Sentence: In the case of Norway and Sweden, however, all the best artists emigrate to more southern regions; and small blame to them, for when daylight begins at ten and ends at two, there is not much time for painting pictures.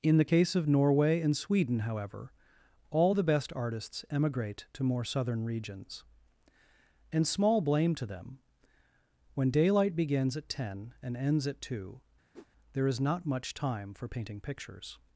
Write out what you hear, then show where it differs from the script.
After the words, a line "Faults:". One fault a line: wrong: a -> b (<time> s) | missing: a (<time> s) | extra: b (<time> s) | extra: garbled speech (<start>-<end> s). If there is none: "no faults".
In the case of Norway and Sweden, however, all the best artists emigrate to more southern regions; and small blame to them, when daylight begins at ten and ends at two, there is not much time for painting pictures.
Faults:
missing: for (8.4 s)